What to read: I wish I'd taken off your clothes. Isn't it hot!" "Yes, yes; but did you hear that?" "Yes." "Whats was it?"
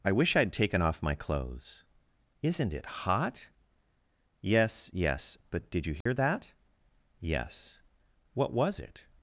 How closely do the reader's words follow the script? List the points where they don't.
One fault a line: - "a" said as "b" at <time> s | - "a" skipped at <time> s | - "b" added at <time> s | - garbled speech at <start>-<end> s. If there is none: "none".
- "your" said as "my" at 1.0 s
- "Whats" said as "What" at 8.3 s